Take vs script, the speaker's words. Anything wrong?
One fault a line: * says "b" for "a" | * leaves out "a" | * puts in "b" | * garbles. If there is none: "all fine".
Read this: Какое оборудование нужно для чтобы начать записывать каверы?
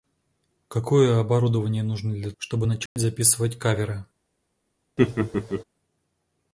all fine